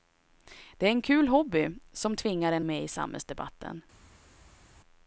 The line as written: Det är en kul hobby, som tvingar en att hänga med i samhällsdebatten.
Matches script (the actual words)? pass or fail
fail